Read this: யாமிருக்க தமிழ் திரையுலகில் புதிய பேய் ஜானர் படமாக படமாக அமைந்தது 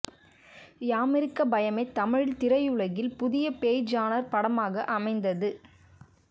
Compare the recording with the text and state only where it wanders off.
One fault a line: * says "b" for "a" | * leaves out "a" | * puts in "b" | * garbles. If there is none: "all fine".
* puts in "பயமே"
* leaves out "படமாக"